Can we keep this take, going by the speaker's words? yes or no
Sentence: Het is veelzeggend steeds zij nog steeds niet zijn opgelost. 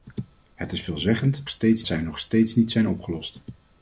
yes